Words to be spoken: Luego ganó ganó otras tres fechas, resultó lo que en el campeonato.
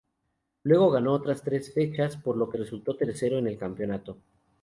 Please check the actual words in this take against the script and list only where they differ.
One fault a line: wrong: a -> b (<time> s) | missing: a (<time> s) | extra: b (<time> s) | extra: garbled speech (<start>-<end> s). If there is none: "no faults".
missing: ganó (1.1 s)
wrong: resultó -> por (2.2 s)
extra: resultó tercero (2.5 s)